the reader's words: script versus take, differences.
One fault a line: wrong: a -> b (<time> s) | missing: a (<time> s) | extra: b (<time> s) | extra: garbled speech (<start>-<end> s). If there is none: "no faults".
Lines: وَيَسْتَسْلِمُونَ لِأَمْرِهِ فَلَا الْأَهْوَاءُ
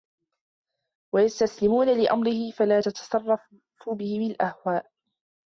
extra: تَتَصَرَّفُ بِهِمْ (2.8 s)